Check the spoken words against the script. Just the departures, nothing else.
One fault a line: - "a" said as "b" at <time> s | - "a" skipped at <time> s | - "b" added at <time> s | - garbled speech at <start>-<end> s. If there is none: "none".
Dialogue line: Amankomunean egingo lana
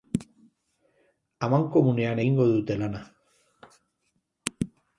- "dute" added at 2.5 s